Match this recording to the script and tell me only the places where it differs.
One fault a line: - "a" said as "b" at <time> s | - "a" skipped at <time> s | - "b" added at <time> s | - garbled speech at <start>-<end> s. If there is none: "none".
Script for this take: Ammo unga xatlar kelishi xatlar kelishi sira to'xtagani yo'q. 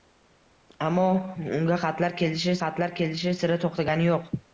none